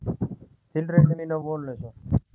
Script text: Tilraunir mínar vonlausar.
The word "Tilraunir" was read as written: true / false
true